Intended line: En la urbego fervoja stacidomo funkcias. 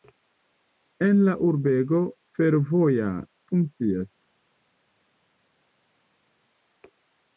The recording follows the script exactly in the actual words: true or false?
false